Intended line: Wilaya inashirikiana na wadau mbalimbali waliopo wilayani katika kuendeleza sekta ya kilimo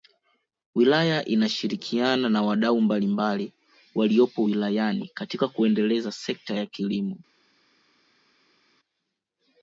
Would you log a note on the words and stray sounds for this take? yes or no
no